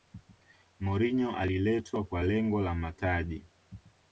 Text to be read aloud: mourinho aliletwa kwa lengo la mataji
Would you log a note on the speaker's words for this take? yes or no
no